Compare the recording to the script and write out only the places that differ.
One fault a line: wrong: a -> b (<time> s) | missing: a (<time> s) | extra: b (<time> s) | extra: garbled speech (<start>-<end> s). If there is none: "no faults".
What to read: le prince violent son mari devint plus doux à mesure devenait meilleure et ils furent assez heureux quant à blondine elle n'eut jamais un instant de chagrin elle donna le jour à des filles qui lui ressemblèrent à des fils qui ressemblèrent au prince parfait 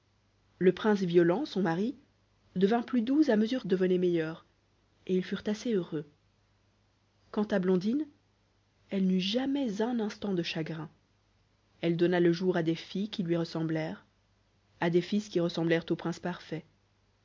no faults